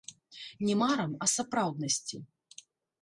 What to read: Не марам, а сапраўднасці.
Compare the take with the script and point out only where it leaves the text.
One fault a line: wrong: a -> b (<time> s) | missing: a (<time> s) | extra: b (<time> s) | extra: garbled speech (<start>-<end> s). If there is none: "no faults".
no faults